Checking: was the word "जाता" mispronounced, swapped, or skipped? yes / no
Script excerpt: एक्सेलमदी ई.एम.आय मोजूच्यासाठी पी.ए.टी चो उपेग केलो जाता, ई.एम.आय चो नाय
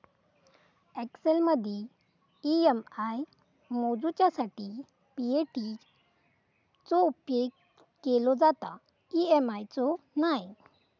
no